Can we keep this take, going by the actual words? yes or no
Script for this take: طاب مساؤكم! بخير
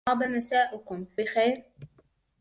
yes